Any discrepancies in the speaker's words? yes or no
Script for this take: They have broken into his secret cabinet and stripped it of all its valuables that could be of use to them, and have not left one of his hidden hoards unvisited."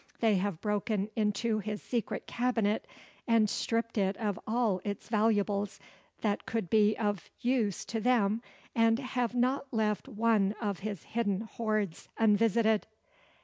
no